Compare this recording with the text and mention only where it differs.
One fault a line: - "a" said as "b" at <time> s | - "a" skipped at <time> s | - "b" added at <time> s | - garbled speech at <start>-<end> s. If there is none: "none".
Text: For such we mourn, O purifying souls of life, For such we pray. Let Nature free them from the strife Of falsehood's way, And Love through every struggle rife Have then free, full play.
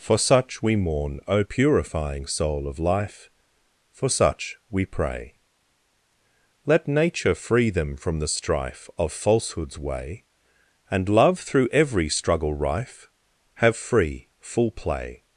- "souls" said as "soul" at 2.3 s
- "then" skipped at 13.8 s